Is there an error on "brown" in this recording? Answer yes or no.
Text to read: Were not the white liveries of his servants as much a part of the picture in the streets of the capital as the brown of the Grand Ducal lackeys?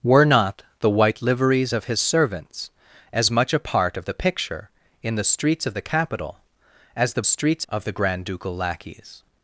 yes